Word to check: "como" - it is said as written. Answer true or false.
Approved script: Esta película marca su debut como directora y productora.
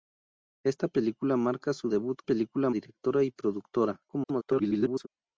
false